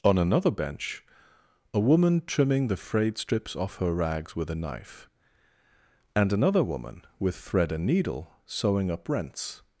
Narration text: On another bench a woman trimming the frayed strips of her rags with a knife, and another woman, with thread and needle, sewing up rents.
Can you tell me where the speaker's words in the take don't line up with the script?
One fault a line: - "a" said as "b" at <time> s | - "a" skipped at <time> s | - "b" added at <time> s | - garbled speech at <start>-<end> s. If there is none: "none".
- "of" said as "off" at 3.5 s